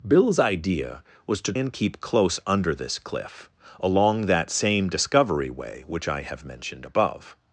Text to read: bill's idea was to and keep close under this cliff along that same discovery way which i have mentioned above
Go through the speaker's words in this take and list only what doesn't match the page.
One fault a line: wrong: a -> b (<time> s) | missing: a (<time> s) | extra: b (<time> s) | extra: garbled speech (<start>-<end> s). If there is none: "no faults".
no faults